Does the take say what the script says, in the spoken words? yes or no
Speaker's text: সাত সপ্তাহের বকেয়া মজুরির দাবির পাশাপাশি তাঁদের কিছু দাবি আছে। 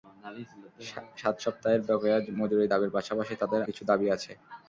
yes